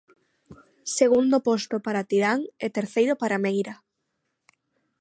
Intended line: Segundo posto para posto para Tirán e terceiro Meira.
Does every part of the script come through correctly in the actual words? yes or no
no